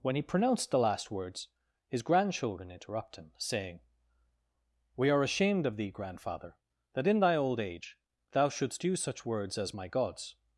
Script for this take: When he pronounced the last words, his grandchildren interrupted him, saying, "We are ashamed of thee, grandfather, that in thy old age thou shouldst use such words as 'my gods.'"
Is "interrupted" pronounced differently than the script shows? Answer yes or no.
yes